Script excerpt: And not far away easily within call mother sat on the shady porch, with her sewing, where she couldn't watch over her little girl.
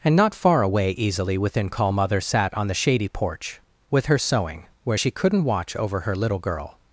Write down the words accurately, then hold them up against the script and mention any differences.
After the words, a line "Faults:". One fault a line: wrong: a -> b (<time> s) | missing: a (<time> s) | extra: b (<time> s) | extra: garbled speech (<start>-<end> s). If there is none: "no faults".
And not far away easily within call mother sat on the shady porch, with her sewing, where she couldn't watch over her little girl.
Faults:
no faults